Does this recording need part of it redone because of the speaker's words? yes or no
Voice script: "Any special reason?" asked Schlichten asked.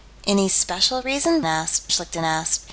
no